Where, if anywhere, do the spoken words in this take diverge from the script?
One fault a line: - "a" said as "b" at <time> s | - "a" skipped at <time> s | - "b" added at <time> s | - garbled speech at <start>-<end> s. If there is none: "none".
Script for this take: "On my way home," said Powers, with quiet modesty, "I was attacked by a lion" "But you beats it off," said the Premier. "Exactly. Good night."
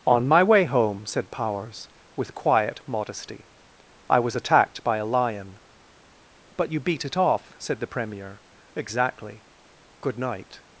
- "beats" said as "beat" at 6.8 s